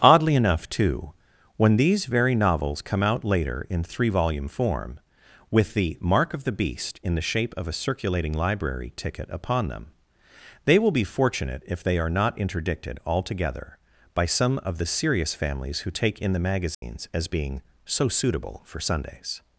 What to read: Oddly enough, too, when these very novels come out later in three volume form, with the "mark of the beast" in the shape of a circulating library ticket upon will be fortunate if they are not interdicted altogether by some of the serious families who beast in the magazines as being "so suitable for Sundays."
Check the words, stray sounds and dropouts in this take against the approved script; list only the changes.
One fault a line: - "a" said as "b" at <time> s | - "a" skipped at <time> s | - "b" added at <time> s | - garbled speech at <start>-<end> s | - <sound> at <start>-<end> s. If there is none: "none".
- "them they" added at 9.7 s
- "beast" said as "take" at 15.9 s
- dropout at 16.7-16.8 s